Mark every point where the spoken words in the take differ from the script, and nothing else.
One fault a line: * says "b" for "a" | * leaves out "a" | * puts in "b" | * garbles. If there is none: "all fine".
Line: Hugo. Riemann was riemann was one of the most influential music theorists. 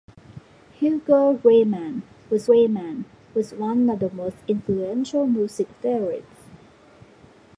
all fine